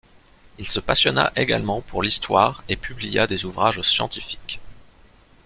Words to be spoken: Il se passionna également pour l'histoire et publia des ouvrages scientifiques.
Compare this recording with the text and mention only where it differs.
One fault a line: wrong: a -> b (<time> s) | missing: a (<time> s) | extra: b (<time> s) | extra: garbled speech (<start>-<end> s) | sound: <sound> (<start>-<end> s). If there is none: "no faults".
no faults